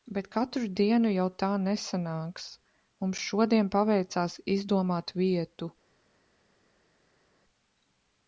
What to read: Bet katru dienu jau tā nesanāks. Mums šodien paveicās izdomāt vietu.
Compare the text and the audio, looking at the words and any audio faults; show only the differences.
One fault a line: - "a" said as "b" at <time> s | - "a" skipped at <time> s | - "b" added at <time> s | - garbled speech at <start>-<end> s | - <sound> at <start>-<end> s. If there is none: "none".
none